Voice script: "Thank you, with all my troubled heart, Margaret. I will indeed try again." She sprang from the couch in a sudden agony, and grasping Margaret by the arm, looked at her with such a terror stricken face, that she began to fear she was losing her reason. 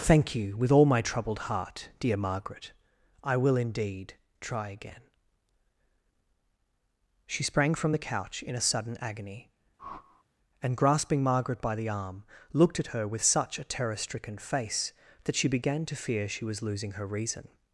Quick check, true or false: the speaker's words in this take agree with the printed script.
false